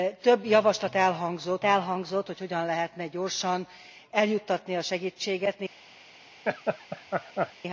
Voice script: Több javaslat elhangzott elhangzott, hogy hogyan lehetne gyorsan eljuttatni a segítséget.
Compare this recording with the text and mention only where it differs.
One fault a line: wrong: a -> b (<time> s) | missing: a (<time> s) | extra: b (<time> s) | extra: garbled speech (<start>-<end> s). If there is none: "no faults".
no faults